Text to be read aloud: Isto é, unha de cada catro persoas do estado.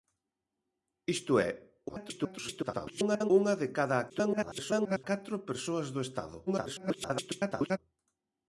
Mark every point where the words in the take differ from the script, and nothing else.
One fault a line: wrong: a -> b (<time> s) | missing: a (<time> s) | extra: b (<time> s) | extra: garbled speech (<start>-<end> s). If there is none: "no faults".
extra: garbled speech (1.9-3.3 s)
extra: garbled speech (4.1-5.0 s)
extra: garbled speech (6.5-7.8 s)